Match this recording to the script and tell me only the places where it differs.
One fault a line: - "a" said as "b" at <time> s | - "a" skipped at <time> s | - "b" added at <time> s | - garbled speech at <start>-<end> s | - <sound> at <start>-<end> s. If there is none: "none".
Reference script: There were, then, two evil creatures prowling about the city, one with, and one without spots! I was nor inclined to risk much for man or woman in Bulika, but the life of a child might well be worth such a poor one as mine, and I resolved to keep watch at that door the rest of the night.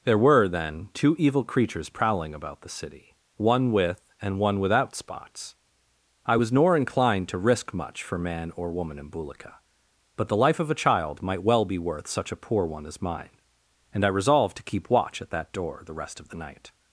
none